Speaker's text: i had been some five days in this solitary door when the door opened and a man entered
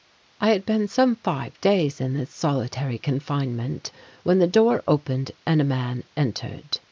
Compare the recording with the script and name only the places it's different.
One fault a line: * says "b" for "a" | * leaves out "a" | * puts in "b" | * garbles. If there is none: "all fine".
* says "confinement" for "door"